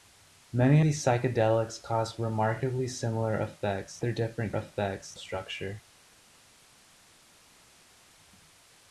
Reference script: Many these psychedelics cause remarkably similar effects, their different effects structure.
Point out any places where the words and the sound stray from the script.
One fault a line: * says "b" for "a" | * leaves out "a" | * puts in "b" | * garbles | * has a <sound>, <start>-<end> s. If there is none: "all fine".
all fine